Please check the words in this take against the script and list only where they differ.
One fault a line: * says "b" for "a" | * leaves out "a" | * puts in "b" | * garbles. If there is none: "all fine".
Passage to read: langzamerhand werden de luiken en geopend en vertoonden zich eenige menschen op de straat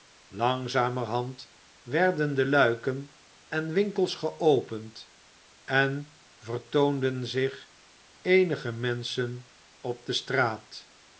* puts in "winkels"